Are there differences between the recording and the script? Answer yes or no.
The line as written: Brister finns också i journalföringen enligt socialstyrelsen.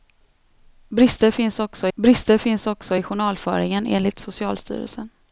yes